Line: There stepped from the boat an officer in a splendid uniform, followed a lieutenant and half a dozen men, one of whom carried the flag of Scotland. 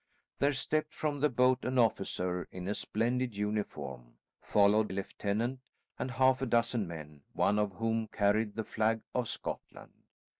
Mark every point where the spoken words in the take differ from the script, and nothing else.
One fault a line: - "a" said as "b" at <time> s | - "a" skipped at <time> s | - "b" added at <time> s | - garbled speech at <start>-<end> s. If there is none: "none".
none